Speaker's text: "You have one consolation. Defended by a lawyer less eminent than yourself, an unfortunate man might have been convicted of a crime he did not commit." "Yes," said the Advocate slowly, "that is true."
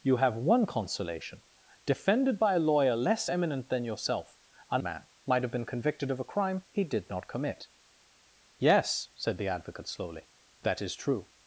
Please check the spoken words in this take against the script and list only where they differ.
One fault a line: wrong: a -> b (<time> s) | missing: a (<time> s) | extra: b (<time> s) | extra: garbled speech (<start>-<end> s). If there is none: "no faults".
missing: unfortunate (4.8 s)